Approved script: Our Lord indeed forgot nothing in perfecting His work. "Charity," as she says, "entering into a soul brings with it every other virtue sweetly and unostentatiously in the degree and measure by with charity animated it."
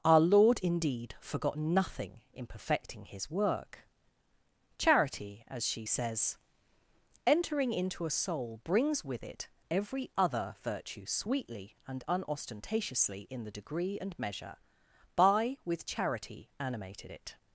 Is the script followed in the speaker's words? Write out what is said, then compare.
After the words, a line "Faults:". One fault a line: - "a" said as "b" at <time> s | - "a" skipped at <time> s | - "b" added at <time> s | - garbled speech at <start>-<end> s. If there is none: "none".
Our Lord indeed forgot nothing in perfecting His work. "Charity," as she says, "entering into a soul brings with it every other virtue sweetly and unostentatiously in the degree and measure by with charity animated it."
Faults:
none